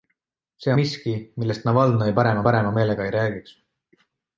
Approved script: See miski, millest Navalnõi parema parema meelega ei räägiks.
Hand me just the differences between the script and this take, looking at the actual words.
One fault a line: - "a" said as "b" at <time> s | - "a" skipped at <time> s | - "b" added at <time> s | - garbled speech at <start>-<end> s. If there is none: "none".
none